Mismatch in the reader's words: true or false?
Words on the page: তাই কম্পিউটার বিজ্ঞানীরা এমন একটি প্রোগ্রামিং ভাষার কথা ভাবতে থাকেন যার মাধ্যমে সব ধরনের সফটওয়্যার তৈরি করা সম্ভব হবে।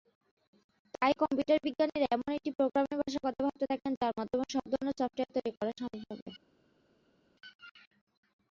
false